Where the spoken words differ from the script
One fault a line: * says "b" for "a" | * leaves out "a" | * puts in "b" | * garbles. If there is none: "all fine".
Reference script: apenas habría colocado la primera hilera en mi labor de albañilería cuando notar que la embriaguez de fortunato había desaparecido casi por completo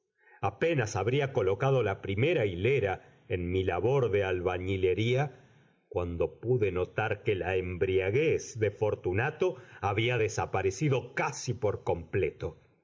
* puts in "pude"